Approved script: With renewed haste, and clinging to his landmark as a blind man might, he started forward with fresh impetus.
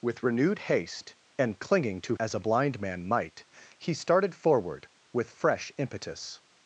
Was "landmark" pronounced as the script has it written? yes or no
no